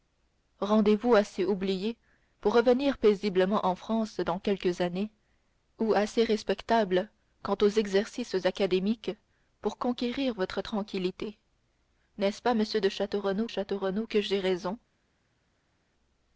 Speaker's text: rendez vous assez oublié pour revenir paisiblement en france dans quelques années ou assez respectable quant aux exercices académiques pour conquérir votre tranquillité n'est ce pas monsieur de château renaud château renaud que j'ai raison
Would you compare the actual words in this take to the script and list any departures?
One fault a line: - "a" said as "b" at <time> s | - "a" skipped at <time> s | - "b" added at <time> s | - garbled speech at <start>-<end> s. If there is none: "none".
none